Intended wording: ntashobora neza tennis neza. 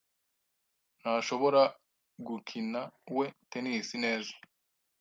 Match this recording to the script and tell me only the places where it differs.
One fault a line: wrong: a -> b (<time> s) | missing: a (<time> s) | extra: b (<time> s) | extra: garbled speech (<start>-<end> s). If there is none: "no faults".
wrong: neza -> gukinawe (2.3 s)